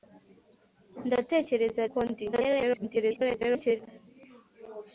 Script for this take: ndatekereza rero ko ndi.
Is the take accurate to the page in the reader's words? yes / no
no